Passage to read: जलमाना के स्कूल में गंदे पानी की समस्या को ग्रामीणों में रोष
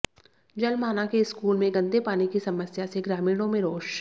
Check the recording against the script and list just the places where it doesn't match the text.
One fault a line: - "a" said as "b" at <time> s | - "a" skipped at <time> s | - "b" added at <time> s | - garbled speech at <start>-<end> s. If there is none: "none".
- "को" said as "से" at 2.9 s